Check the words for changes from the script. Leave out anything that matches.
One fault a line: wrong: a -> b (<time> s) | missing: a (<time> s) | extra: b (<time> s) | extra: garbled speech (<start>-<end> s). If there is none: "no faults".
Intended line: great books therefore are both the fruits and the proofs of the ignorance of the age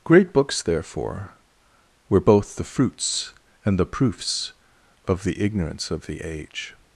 wrong: are -> were (2.1 s)